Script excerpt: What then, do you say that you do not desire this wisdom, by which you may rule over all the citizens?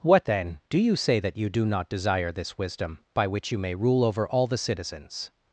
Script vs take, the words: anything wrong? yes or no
no